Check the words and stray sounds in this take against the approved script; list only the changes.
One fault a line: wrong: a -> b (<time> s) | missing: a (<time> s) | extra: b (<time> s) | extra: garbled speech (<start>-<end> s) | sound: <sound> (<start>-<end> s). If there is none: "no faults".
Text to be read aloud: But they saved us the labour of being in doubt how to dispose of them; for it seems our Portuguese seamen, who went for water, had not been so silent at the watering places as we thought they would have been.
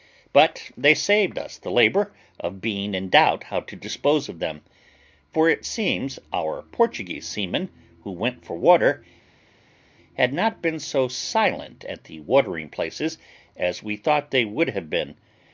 no faults